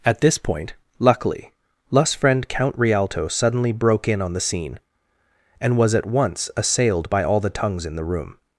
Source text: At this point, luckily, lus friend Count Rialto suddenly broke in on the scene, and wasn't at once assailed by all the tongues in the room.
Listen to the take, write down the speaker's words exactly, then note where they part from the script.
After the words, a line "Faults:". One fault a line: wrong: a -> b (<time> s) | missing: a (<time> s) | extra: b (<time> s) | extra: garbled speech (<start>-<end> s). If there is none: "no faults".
At this point, luckily, lus friend Count Rialto suddenly broke in on the scene, and was at once assailed by all the tongues in the room.
Faults:
wrong: wasn't -> was (5.8 s)